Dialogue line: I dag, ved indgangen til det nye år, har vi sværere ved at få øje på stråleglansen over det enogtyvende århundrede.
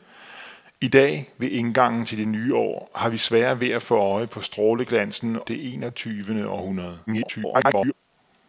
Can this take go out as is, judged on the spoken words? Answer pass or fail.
fail